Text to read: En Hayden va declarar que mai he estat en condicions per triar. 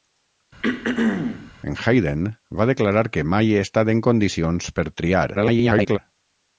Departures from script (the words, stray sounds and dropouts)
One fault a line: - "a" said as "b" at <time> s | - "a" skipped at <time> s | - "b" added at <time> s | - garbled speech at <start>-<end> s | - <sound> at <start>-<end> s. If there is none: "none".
- throat clearing at 0.6-1.5 s
- garbled speech at 5.3-6.0 s